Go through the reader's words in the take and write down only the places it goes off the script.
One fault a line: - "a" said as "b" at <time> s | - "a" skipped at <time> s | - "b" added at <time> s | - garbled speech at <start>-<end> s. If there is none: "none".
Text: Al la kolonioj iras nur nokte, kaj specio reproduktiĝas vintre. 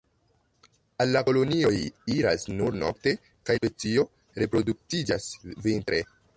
none